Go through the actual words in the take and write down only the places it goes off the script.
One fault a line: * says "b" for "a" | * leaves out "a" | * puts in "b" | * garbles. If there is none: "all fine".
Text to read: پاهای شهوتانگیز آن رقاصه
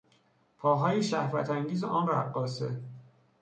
all fine